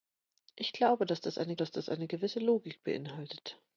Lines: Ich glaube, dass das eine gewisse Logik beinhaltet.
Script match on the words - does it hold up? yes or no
no